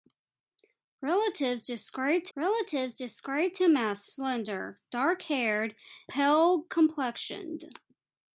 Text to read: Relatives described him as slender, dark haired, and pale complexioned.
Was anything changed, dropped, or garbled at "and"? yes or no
yes